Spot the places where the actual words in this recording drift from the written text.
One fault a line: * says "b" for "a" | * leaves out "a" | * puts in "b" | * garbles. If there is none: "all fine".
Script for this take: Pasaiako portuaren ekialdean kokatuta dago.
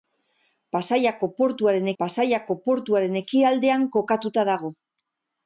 * puts in "pasaiako portuaren"